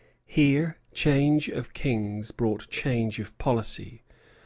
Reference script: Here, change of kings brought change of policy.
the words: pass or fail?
pass